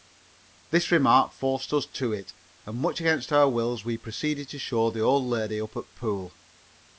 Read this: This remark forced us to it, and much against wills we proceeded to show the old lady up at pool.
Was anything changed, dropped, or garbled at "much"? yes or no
no